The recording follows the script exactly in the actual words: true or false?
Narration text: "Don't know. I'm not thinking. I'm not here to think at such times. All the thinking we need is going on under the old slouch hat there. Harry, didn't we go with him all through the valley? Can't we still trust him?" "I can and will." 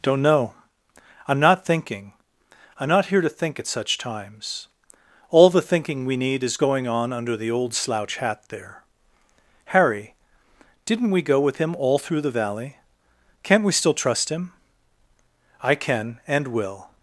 true